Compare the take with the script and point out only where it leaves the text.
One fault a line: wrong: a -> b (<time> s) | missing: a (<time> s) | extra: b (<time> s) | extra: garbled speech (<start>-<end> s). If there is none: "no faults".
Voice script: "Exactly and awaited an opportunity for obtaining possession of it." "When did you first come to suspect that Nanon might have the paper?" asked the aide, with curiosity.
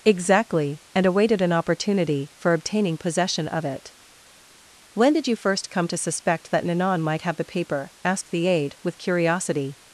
no faults